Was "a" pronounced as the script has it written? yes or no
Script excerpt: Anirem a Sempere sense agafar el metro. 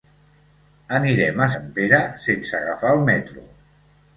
yes